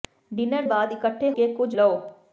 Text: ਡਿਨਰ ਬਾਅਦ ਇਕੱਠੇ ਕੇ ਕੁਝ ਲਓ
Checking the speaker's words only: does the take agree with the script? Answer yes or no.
yes